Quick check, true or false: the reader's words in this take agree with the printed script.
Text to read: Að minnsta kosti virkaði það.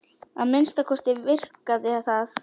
true